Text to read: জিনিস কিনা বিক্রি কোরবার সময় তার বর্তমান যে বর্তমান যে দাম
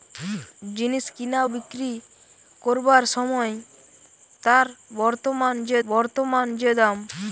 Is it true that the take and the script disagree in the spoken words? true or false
false